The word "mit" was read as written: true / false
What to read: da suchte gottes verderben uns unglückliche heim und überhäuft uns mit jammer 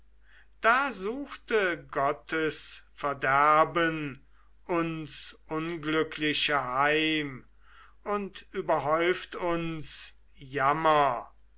false